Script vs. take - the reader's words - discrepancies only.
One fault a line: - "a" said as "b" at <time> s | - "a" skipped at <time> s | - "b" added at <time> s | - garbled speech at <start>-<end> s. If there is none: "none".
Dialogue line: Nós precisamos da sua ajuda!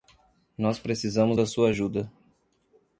none